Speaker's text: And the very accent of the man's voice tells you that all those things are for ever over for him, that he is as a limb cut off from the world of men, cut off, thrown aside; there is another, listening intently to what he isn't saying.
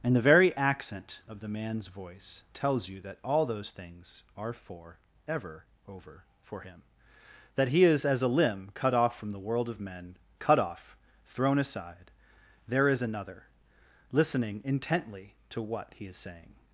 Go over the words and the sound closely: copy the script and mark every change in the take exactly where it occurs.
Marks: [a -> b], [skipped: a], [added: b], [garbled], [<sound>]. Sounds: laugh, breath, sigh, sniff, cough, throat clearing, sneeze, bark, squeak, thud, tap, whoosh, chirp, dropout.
And the very accent of the man's voice tells you that all those things are for ever over for him, that he is as a limb cut off from the world of men, cut off, thrown aside; there is another, listening intently to what he [isn't -> is] saying.